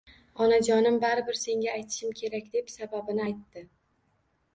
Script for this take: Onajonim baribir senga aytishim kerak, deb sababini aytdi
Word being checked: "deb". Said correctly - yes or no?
yes